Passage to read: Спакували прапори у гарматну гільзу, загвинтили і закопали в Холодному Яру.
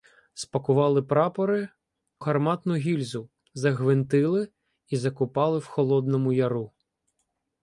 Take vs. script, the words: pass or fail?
fail